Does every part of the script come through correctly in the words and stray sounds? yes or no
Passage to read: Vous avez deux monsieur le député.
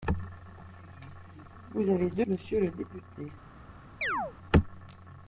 no